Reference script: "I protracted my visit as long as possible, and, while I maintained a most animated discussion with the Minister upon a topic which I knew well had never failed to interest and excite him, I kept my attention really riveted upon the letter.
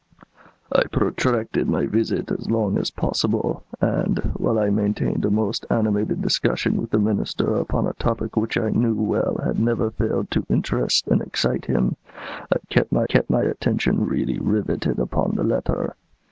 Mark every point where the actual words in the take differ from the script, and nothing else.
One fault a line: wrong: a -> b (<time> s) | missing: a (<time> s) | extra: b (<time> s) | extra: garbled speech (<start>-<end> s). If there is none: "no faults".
extra: kept my (13.1 s)